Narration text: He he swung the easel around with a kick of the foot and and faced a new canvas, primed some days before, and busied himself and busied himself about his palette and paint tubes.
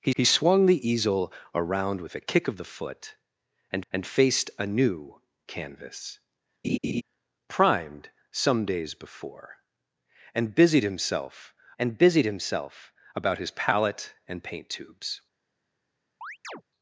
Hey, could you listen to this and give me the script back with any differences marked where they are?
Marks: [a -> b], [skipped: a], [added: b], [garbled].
He he swung the easel around with a kick of the foot and and faced a new canvas, primed some days before, and busied himself and busied himself about his palette and paint tubes.